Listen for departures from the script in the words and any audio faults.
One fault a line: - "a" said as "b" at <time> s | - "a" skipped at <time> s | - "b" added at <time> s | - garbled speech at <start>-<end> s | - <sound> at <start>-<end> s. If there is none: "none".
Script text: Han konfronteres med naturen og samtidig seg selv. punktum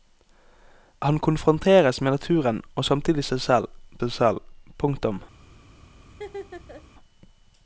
- "seg selv" added at 4.0 s
- laugh at 6.1-6.8 s